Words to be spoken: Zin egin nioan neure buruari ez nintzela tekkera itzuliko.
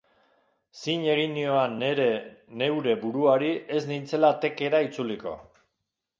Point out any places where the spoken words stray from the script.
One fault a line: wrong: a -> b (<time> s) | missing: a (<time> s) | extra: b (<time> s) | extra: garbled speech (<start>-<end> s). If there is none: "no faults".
no faults